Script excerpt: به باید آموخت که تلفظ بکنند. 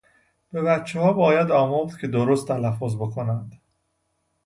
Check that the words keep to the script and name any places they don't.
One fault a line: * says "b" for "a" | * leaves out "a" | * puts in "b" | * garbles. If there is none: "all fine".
* puts in "بچهها"
* puts in "درست"